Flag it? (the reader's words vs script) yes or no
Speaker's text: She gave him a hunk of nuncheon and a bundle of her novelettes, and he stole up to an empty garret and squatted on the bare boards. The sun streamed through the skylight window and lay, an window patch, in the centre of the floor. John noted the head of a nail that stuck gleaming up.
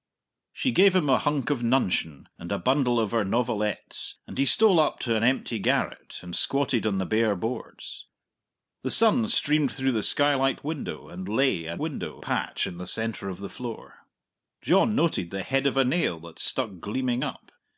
no